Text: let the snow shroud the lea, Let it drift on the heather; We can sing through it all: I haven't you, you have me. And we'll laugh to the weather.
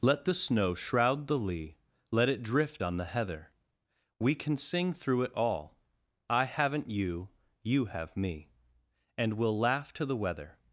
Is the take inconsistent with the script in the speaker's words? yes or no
no